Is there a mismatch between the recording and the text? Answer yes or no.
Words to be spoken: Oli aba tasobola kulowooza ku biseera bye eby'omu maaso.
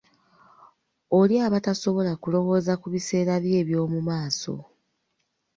no